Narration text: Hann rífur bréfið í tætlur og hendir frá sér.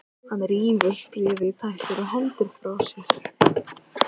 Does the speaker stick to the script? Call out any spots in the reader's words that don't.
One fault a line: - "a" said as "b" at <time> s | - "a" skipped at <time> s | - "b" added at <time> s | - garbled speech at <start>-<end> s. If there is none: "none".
none